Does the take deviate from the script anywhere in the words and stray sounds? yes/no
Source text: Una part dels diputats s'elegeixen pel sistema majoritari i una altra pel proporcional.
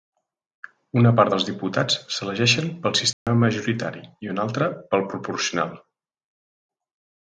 yes